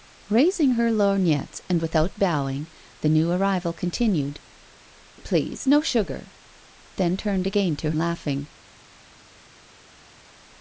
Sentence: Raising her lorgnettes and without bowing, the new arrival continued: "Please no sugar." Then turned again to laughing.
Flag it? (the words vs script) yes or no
no